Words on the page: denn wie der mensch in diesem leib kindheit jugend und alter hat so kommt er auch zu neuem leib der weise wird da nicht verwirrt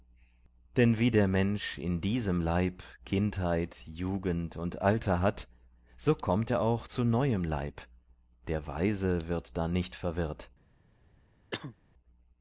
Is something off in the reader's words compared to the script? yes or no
no